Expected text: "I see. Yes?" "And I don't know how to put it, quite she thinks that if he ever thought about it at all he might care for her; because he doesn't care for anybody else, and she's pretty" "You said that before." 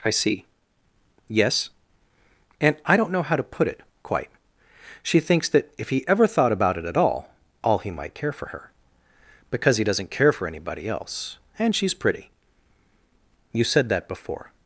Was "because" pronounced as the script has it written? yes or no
yes